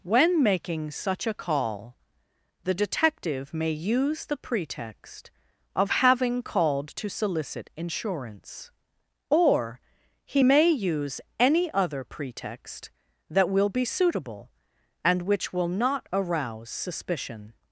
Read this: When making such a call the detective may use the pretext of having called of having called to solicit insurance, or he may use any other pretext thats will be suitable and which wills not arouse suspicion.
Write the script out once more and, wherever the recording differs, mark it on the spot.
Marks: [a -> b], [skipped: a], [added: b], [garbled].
When making such a call the detective may use the pretext of having called [skipped: of having called] to solicit insurance, or he may use any other pretext [thats -> that] will be suitable and which [wills -> will] not arouse suspicion.